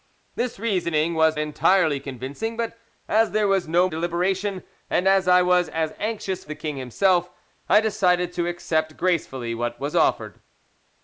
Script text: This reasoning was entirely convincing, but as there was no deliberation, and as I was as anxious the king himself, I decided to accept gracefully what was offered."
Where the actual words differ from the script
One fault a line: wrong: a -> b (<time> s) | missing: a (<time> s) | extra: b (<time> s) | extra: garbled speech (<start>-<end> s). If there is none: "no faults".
no faults